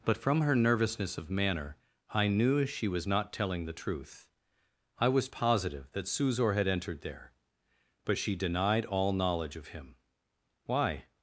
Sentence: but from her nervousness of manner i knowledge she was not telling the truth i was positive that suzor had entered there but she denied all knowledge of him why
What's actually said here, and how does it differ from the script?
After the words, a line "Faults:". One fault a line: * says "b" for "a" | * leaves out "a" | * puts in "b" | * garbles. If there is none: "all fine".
but from her nervousness of manner i knew she was not telling the truth i was positive that suzor had entered there but she denied all knowledge of him why
Faults:
* says "knew" for "knowledge"